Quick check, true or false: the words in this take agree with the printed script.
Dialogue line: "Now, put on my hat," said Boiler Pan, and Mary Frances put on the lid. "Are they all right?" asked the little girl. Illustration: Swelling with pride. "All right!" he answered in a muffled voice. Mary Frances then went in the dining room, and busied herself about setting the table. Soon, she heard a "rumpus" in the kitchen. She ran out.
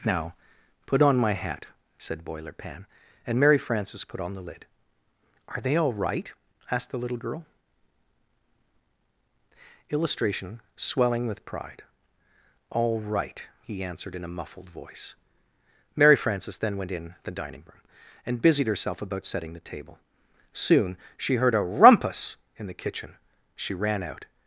true